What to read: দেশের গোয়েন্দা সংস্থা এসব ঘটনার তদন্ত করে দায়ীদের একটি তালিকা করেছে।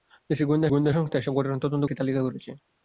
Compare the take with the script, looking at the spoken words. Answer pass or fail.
fail